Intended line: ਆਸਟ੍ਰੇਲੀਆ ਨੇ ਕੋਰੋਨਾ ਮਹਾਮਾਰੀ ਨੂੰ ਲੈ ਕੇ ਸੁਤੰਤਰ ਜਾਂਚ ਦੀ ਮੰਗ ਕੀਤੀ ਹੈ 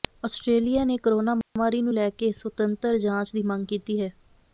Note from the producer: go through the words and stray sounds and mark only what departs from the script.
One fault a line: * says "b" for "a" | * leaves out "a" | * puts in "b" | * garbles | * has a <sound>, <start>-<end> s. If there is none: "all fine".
* has a dropout, 1.4-1.6 s